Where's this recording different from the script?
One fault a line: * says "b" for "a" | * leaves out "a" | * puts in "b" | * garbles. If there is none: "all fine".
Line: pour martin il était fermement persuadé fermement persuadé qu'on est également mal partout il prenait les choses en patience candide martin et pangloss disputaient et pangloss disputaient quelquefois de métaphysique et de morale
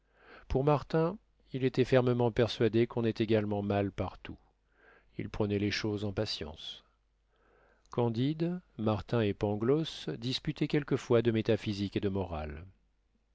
* leaves out "fermement persuadé"
* leaves out "et pangloss disputaient"